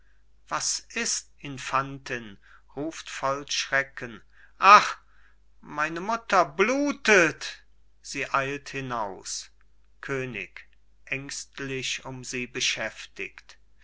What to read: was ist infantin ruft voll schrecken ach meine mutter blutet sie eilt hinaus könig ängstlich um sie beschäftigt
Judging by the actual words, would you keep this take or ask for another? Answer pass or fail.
pass